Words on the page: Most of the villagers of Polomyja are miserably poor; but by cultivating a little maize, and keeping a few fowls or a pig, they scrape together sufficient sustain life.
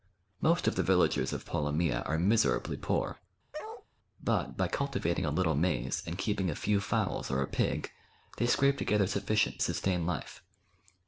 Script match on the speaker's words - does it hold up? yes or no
yes